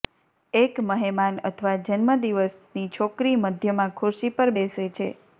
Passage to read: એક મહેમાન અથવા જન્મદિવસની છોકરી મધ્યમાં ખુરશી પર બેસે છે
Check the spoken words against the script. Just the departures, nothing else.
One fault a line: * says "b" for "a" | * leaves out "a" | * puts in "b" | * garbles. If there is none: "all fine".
all fine